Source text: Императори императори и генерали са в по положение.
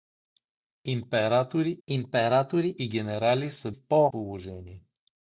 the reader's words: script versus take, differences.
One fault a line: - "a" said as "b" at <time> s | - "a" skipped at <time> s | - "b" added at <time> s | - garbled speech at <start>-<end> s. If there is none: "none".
none